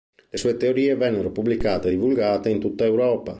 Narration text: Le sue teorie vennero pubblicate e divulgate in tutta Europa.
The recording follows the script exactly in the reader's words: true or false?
true